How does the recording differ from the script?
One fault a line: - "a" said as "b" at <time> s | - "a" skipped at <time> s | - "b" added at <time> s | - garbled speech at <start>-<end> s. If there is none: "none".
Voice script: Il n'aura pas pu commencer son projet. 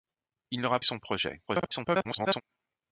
- "pas pu commencer" skipped at 0.8 s
- garbled speech at 1.5-2.4 s